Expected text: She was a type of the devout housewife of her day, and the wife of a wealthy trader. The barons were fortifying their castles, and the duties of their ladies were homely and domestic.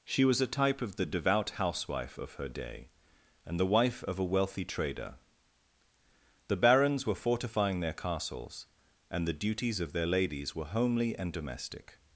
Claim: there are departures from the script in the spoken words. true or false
false